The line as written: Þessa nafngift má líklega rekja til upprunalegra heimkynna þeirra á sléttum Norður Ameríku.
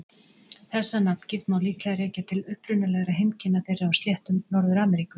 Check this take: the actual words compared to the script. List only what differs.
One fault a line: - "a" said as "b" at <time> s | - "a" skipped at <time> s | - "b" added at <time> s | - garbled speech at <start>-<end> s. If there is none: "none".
none